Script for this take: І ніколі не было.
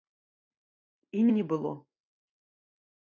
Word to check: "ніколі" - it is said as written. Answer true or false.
false